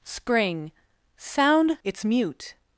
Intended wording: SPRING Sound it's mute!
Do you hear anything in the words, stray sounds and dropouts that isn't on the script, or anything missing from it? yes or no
no